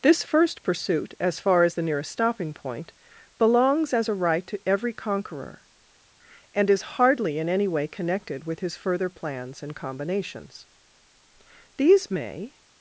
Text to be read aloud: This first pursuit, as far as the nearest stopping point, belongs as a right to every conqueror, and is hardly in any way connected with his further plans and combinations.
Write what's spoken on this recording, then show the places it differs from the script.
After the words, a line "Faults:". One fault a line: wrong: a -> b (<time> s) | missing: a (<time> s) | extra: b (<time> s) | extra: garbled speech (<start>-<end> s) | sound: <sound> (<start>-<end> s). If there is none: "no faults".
This first pursuit, as far as the nearest stopping point, belongs as a right to every conqueror, and is hardly in any way connected with his further plans and combinations. These may
Faults:
extra: These may (11.8 s)